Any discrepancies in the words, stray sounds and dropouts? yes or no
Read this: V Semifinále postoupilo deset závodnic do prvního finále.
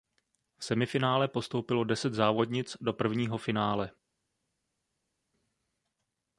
no